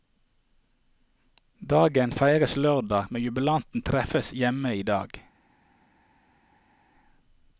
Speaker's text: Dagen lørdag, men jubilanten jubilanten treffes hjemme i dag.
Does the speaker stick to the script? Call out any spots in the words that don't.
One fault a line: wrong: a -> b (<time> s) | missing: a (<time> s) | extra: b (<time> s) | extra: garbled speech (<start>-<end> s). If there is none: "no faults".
extra: feires (2.1 s)
missing: jubilanten (3.8 s)